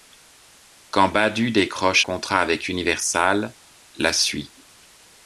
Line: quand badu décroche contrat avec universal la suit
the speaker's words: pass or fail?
pass